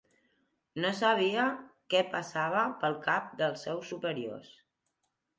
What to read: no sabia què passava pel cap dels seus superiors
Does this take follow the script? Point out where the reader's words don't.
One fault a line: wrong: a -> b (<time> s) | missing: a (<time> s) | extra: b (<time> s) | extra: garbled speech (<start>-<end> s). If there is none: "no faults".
no faults